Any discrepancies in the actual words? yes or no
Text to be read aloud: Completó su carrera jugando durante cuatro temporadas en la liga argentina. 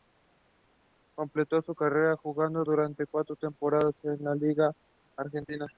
no